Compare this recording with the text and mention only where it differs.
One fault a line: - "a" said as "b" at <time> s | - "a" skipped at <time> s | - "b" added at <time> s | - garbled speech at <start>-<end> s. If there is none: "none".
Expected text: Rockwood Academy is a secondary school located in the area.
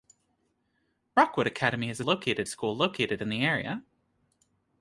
- "secondary" said as "located" at 2.0 s